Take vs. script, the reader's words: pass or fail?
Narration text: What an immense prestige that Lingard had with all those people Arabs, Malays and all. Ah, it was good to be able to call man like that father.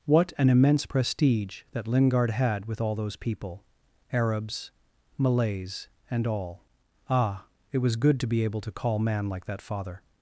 pass